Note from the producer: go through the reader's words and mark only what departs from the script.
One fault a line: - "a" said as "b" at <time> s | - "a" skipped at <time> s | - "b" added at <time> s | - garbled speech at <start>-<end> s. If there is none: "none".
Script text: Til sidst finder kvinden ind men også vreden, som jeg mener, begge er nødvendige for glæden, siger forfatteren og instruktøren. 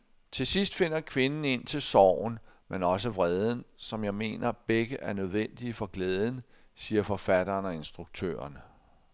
- "til sorgen" added at 1.7 s